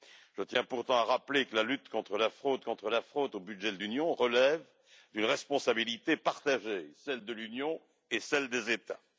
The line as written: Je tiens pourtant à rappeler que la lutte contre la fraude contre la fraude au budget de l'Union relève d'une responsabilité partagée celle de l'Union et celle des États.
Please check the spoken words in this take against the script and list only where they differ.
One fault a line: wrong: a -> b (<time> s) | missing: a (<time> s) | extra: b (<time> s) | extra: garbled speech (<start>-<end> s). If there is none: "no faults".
no faults